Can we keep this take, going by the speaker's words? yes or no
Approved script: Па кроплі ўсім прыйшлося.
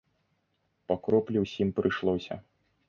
yes